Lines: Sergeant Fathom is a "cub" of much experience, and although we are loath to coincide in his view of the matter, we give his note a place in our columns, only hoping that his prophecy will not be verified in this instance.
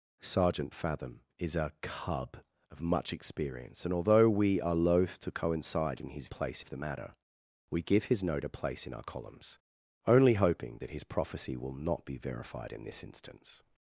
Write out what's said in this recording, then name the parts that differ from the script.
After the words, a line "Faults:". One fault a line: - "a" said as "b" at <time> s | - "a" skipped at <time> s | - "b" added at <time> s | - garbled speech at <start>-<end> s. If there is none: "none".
Sergeant Fathom is a "cub" of much experience, and although we are loath to coincide in his place of the matter, we give his note a place in our columns, only hoping that his prophecy will not be verified in this instance.
Faults:
- "view" said as "place" at 6.3 s